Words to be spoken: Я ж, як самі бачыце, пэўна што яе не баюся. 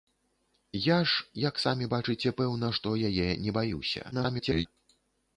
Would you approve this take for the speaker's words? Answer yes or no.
no